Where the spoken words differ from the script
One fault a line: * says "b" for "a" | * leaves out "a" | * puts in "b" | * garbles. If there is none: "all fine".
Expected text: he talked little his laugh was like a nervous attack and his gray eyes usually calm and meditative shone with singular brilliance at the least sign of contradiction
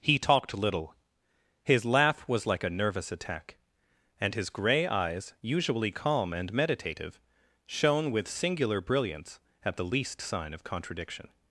all fine